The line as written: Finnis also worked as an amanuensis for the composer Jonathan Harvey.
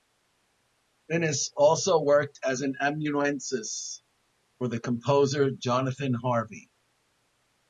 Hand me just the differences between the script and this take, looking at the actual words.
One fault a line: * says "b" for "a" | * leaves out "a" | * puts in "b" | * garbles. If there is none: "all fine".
all fine